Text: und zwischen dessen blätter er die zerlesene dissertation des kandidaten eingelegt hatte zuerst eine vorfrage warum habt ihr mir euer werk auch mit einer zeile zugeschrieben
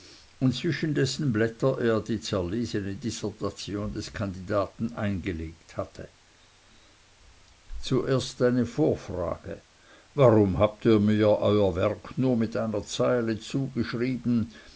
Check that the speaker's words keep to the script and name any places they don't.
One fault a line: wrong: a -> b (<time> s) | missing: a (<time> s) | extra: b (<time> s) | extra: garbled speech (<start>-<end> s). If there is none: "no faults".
wrong: auch -> nur (12.2 s)